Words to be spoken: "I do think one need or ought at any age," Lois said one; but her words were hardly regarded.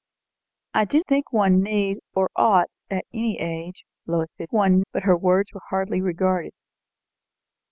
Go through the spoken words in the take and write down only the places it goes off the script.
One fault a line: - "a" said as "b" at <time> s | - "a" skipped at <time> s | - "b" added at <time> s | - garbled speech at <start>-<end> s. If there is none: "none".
none